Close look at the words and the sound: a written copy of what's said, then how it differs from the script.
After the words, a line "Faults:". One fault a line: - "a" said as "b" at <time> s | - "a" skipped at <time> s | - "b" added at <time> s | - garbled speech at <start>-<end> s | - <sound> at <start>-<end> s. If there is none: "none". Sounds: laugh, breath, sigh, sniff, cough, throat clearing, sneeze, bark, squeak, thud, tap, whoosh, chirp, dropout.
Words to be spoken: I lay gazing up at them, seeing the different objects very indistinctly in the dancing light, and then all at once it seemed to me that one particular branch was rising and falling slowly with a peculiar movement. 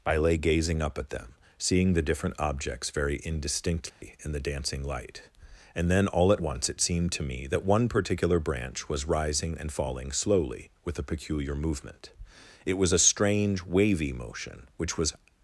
I lay gazing up at them, seeing the different objects very indistinctly in the dancing light, and then all at once it seemed to me that one particular branch was rising and falling slowly with a peculiar movement. It was a strange wavy motion, which was
Faults:
- dropout at 3.9-4.0 s
- "It was a strange wavy motion which was" added at 12.6 s